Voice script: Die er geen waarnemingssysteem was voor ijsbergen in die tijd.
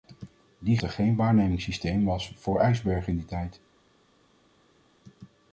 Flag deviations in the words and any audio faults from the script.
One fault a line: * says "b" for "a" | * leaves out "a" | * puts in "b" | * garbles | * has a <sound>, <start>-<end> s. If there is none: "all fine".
all fine